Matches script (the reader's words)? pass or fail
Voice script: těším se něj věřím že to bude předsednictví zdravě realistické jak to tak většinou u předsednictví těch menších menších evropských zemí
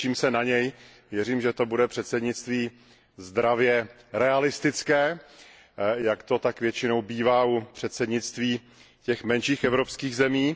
fail